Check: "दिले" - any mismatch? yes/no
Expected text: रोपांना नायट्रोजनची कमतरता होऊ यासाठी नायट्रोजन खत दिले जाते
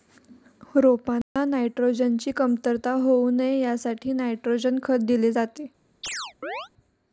no